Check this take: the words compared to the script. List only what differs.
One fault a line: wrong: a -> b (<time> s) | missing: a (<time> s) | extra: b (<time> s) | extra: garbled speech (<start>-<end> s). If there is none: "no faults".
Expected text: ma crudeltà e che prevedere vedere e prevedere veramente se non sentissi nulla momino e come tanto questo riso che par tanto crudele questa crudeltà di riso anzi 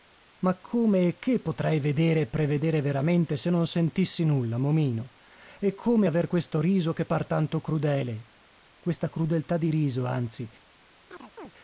wrong: crudeltà -> come (0.6 s)
wrong: prevedere -> potrei (1.4 s)
wrong: tanto -> aver (6.0 s)